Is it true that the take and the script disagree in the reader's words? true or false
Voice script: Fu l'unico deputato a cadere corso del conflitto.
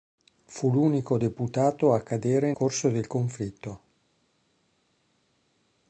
false